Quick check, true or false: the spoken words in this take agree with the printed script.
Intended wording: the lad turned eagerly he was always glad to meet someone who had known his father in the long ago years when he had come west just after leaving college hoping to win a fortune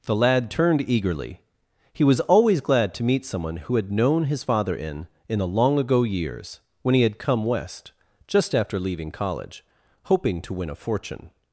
false